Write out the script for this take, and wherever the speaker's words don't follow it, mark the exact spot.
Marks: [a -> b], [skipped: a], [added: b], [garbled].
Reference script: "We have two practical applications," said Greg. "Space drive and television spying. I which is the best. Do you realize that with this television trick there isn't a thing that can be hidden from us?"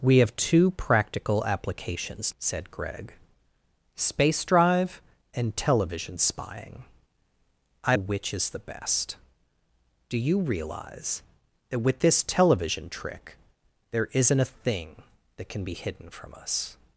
"We have two practical applications," said Greg. "Space drive and television spying. I which is the best. Do you realize that with this television trick there isn't a thing that can be hidden from us?"